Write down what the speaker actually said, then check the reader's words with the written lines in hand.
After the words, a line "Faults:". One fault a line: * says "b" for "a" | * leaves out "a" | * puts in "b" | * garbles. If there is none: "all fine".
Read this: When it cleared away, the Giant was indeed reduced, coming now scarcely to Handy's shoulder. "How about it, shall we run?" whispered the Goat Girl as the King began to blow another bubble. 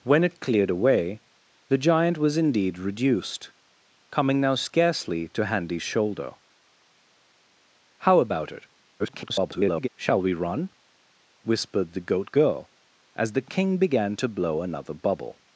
When it cleared away, the Giant was indeed reduced, coming now scarcely to Handy's shoulder. "How about it, [garbled] shall we run?" whispered the Goat Girl as the King began to blow another bubble.
Faults:
* garbles